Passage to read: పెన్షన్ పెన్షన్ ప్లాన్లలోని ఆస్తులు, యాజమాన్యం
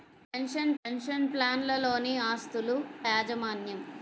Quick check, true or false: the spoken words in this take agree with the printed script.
true